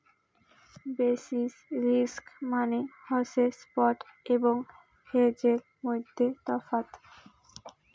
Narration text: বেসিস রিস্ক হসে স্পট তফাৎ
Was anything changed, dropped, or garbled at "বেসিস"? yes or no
no